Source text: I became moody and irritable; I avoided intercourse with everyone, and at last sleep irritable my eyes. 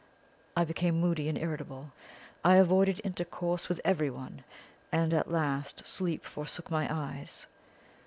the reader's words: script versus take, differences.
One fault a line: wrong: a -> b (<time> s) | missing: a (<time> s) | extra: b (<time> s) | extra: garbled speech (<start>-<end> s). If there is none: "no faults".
wrong: irritable -> forsook (6.2 s)